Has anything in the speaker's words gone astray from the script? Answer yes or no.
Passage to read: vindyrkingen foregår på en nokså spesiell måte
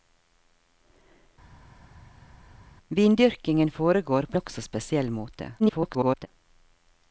yes